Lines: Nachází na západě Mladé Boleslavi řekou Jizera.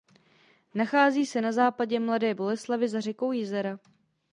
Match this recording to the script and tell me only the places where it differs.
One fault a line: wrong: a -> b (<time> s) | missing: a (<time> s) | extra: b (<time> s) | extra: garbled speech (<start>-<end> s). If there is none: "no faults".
extra: se (1.2 s)
extra: za (2.9 s)